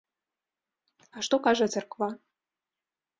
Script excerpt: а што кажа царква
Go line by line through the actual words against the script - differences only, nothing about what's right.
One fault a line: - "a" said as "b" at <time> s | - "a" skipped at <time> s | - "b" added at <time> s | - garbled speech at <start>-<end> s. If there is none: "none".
none